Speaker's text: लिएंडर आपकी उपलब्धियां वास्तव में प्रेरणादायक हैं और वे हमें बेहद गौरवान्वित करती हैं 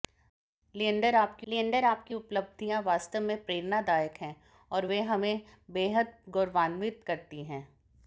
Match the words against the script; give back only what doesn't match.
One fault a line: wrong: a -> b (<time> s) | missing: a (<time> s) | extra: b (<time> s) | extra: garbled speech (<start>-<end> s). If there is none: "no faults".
extra: लिएंडर आपकी (1.5 s)